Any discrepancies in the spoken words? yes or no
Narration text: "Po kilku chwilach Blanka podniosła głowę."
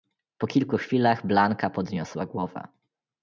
no